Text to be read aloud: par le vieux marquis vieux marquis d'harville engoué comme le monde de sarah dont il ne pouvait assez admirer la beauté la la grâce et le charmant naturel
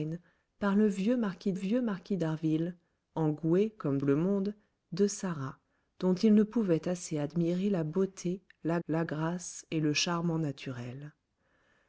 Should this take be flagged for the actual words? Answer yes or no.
no